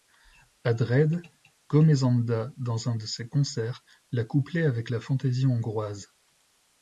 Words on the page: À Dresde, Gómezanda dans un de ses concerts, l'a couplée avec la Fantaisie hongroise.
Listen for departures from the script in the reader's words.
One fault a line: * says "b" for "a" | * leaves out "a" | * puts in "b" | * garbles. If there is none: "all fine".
all fine